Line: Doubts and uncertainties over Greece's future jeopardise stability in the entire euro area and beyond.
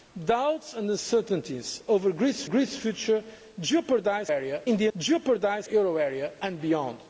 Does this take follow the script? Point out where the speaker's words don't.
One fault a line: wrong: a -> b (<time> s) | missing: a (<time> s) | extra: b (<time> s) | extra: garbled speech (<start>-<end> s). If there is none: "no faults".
extra: Greece's (2.5 s)
wrong: stability -> area (4.3 s)
wrong: entire -> jeopardise (5.0 s)